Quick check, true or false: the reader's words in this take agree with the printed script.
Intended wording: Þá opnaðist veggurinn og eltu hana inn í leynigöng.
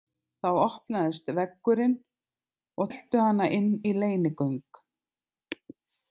true